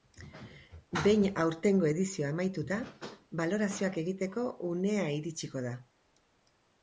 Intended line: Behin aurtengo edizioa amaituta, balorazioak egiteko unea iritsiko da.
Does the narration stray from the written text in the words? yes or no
no